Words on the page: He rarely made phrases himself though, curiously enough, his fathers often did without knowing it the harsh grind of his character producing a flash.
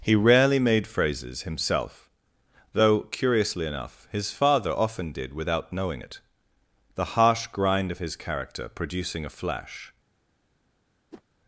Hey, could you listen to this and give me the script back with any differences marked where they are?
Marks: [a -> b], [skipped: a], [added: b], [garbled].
He rarely made phrases himself though, curiously enough, his [fathers -> father] often did without knowing it the harsh grind of his character producing a flash.